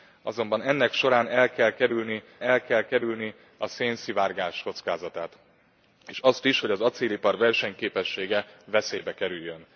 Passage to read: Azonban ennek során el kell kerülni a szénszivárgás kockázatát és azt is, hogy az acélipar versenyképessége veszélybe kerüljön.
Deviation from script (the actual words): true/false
true